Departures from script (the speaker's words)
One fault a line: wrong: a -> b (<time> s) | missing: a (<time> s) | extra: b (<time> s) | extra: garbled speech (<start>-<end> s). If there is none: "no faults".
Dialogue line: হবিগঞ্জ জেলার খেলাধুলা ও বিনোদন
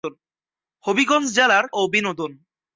missing: খেলাধুলা (1.6 s)